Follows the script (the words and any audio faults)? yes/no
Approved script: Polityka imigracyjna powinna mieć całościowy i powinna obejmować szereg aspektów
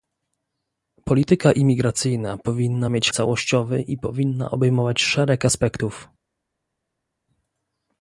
yes